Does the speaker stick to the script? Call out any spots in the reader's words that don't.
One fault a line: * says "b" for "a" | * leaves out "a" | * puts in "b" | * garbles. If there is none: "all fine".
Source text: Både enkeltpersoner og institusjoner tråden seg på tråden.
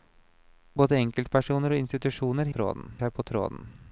all fine